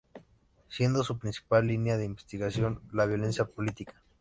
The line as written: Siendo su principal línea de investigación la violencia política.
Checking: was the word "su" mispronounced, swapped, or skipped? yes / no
no